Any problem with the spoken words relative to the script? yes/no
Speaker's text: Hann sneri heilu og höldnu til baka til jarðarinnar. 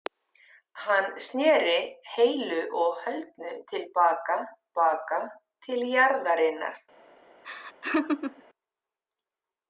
yes